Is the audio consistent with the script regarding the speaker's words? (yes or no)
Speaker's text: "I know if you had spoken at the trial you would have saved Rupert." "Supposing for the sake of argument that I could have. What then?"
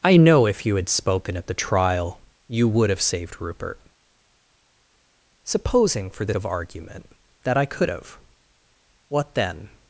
no